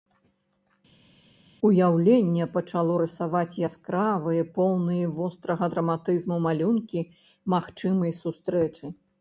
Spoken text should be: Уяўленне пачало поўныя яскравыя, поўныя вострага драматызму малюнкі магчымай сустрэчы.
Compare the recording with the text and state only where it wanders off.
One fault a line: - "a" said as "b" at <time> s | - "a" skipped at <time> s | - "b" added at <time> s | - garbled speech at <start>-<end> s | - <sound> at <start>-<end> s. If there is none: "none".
- "поўныя" said as "рысаваць" at 3.0 s